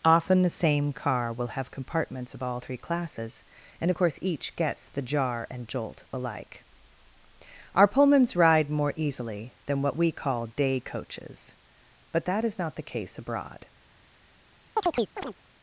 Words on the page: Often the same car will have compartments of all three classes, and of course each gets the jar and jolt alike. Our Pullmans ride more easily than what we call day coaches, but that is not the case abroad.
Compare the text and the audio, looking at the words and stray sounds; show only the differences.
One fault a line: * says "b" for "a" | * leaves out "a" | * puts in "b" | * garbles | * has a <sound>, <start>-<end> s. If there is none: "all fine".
* has a chirp, 14.8-15.4 s